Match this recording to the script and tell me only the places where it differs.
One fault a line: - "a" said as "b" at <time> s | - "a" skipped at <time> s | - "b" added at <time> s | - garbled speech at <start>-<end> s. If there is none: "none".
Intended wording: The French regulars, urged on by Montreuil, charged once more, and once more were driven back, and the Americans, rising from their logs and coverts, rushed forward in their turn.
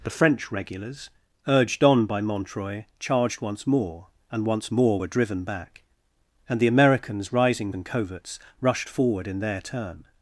- "from their logs" skipped at 7.7 s